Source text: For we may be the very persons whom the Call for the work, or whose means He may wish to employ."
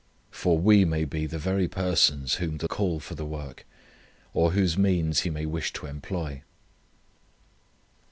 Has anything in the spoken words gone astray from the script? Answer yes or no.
no